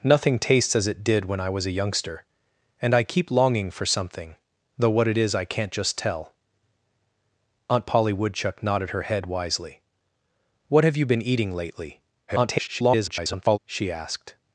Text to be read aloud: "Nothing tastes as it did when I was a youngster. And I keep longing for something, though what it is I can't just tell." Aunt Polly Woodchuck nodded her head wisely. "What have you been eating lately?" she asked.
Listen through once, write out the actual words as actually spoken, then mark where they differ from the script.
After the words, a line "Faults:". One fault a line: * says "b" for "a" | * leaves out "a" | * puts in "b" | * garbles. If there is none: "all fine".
"Nothing tastes as it did when I was a youngster. And I keep longing for something, though what it is I can't just tell." Aunt Polly Woodchuck nodded her head wisely. "What have you been eating lately?" [garbled] she asked.
Faults:
* garbles